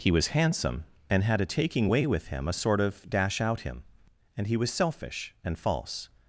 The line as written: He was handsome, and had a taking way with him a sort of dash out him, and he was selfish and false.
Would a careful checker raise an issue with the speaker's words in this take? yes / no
no